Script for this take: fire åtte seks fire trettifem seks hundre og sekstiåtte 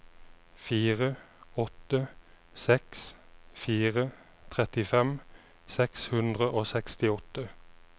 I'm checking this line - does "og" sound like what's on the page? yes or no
yes